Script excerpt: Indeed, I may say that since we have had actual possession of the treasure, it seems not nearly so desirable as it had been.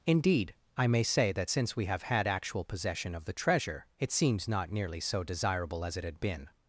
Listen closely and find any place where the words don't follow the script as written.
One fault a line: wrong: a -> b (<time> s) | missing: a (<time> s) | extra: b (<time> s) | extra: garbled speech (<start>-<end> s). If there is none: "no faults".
no faults